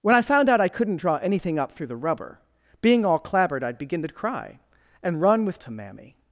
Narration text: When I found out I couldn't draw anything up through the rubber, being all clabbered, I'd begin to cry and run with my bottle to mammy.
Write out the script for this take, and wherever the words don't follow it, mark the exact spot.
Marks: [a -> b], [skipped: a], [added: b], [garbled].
When I found out I couldn't draw anything up through the rubber, being all clabbered, I'd begin to cry and run with [skipped: my bottle] to mammy.